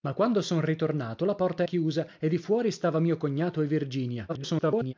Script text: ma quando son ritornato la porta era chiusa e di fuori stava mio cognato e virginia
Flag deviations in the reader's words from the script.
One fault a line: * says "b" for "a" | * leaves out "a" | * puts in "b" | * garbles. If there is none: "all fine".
* leaves out "era"
* garbles